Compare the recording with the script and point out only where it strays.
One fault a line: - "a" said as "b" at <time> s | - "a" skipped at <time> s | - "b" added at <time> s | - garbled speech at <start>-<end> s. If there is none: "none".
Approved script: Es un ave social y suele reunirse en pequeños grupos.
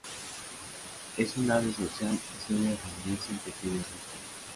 none